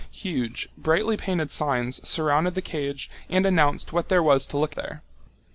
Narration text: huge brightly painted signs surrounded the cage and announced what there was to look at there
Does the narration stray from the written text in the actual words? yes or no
yes